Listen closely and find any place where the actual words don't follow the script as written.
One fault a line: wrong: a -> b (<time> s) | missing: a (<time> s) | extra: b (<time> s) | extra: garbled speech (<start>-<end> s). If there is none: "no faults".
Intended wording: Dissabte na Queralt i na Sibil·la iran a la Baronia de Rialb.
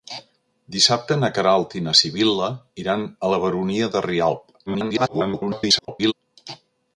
extra: garbled speech (4.7-6.1 s)